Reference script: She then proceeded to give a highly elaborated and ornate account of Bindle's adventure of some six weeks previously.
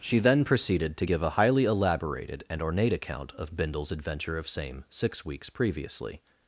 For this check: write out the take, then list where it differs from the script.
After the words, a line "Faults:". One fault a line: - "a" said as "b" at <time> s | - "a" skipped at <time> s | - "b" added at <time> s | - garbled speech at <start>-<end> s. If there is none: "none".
She then proceeded to give a highly elaborated and ornate account of Bindle's adventure of same six weeks previously.
Faults:
- "some" said as "same" at 4.5 s